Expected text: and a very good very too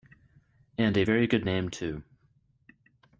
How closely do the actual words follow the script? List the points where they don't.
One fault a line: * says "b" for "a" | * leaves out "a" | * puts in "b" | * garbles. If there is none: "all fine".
* says "name" for "very"